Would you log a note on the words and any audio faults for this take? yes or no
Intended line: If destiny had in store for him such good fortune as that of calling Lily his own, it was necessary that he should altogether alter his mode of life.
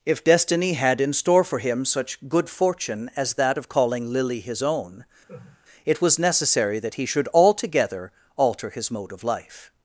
yes